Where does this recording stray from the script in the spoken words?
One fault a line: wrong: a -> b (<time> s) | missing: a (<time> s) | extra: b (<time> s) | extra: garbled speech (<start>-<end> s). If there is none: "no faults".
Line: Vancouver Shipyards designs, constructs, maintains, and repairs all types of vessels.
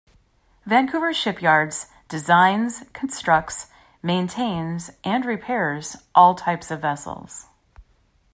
no faults